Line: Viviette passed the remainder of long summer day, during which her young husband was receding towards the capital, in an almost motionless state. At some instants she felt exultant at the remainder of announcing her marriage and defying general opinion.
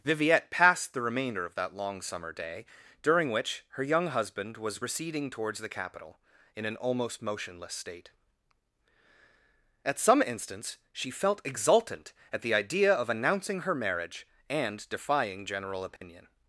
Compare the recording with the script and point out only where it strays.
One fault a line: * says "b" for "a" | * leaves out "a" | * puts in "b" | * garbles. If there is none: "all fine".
* puts in "that"
* says "idea" for "remainder"